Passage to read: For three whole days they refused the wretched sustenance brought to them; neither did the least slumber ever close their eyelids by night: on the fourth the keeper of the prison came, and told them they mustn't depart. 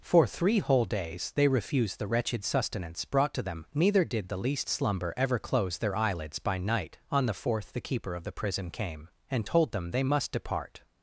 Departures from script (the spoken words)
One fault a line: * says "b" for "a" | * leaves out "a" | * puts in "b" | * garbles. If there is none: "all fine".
* says "must" for "mustn't"